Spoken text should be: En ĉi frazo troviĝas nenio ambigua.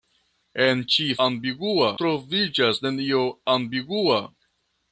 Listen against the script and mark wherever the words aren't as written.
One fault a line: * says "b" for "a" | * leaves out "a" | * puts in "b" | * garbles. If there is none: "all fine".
* says "ambigua" for "frazo"